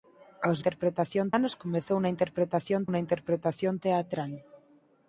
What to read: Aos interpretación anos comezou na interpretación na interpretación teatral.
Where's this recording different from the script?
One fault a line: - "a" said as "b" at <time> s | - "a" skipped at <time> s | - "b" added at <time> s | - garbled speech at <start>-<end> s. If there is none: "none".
none